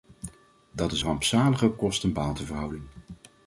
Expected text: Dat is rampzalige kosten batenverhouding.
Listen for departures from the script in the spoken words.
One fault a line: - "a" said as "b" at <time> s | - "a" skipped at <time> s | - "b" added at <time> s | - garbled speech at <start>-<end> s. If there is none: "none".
none